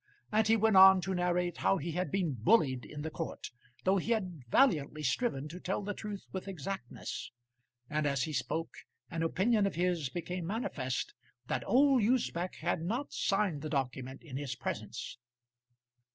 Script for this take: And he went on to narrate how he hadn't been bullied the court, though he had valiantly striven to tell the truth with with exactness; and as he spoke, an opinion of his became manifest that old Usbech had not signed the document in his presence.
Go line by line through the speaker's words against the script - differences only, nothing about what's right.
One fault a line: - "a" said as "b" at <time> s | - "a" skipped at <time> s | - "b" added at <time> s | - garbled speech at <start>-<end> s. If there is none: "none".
- "hadn't" said as "had" at 1.9 s
- "in" added at 2.8 s
- "with" skipped at 6.5 s